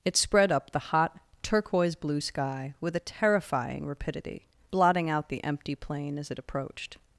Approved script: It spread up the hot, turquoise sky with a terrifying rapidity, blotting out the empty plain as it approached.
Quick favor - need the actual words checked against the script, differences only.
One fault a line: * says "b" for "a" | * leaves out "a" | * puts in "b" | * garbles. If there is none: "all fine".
* puts in "blue"